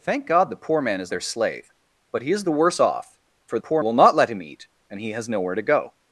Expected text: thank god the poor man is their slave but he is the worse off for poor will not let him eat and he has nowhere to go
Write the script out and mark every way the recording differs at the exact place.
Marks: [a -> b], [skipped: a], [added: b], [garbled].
thank god the poor man is their slave but he is the worse off for poor will not let him eat and he has nowhere to go